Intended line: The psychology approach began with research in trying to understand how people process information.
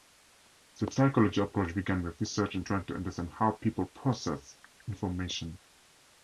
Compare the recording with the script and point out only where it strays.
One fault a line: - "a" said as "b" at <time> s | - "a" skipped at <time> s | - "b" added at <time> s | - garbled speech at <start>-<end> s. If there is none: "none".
none